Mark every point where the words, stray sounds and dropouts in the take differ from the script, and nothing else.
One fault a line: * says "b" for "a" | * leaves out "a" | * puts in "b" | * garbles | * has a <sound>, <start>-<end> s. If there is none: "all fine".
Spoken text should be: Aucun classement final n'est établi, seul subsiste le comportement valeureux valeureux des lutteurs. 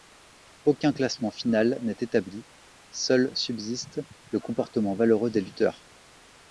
* leaves out "valeureux"